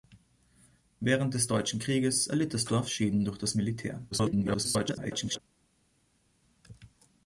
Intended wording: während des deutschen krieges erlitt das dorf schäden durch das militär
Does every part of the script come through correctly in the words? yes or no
no